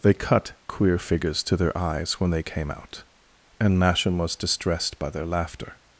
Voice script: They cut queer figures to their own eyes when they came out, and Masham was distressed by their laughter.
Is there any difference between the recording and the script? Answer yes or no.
yes